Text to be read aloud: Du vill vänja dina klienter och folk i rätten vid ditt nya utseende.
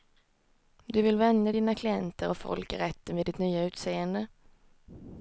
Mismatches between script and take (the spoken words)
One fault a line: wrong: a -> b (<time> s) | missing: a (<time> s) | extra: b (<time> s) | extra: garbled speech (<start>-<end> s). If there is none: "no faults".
no faults